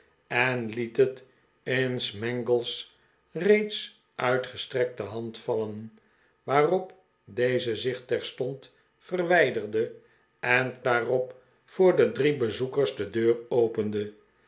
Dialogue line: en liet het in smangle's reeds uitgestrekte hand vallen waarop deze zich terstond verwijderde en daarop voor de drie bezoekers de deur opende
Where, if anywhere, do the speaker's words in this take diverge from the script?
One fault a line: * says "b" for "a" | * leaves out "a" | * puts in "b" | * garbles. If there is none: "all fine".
all fine